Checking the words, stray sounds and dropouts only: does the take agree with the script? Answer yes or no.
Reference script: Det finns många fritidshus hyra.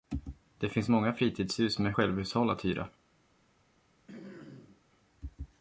no